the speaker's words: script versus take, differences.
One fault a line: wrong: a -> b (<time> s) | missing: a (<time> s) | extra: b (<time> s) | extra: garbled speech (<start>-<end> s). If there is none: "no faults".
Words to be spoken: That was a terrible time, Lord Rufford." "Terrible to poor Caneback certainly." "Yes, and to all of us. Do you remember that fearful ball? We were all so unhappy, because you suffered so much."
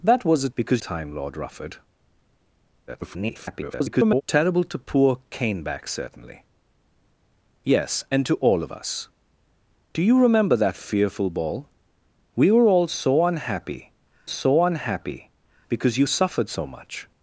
wrong: terrible -> because (0.5 s)
extra: garbled speech (2.9-4.2 s)
extra: so unhappy (14.3 s)